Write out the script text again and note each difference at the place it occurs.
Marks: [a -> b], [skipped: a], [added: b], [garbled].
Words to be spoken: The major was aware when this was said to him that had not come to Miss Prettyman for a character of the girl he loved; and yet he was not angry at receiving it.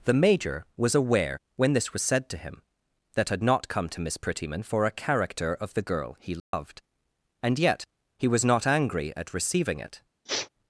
The major was aware when this was said to him that had not come to Miss Prettyman for a character of the girl he loved; and yet he was not angry at receiving it.